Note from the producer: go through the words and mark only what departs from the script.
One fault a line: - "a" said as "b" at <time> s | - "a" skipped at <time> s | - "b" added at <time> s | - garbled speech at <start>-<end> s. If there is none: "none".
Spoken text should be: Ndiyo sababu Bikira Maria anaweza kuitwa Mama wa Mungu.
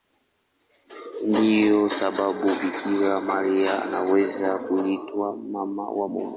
none